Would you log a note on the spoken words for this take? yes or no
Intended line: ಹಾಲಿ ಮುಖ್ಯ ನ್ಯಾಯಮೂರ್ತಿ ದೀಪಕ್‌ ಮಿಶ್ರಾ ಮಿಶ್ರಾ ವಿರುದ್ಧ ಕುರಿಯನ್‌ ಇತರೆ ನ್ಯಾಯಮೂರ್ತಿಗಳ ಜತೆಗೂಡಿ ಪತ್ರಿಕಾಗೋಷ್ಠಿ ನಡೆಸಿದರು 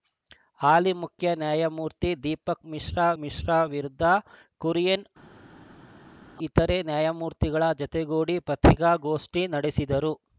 no